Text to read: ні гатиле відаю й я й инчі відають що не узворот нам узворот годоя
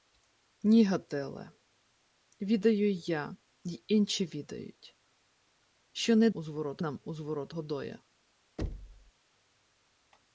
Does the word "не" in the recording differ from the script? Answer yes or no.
no